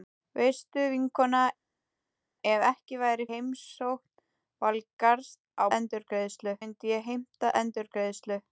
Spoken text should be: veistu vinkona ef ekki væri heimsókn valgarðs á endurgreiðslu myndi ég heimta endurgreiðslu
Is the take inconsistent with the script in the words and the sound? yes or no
no